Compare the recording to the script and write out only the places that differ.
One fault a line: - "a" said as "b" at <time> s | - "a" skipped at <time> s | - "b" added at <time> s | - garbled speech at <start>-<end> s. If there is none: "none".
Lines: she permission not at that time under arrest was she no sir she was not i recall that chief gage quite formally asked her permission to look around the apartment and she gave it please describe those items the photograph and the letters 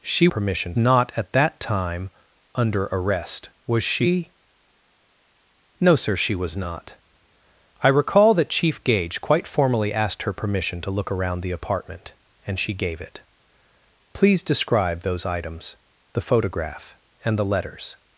none